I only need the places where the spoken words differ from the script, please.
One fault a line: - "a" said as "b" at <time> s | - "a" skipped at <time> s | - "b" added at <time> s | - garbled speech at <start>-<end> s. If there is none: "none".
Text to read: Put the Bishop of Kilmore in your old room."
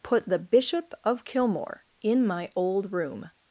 - "your" said as "my" at 2.2 s